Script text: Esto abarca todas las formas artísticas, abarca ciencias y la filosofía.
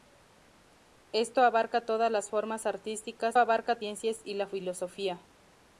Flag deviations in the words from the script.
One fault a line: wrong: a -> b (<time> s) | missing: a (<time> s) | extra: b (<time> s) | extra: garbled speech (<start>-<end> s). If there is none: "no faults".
no faults